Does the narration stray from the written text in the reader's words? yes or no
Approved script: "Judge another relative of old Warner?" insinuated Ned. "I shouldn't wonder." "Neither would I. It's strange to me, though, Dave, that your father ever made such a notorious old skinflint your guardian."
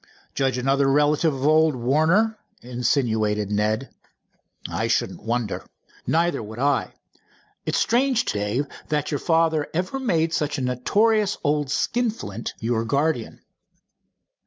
yes